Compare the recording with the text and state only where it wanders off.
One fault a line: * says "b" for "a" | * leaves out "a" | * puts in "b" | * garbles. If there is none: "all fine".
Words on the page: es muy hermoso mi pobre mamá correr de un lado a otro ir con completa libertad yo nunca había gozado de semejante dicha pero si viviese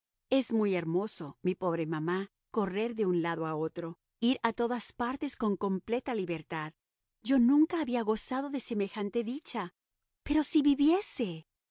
* puts in "a todas partes"